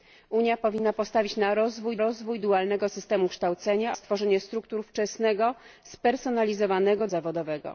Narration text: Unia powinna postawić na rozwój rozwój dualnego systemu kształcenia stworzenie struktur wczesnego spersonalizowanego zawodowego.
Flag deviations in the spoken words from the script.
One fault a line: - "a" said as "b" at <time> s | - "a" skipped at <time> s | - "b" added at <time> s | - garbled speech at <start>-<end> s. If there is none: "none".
none